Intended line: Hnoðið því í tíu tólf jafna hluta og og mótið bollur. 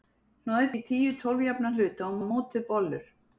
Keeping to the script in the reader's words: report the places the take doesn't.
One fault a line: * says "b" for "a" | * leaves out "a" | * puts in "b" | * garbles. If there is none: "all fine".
all fine